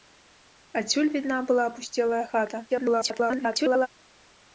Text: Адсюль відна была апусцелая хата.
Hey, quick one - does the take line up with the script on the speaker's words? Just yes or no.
no